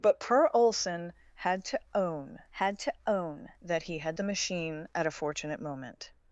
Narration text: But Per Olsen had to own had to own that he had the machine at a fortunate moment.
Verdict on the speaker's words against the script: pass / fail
pass